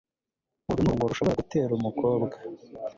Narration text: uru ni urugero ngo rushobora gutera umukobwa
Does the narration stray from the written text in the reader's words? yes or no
yes